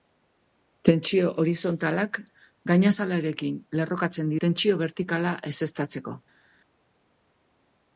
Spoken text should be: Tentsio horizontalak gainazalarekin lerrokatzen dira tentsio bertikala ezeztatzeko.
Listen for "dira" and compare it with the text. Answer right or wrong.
wrong